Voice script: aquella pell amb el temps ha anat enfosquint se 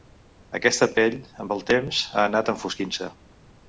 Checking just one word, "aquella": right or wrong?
wrong